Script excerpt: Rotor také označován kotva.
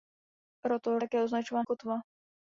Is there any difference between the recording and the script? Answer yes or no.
no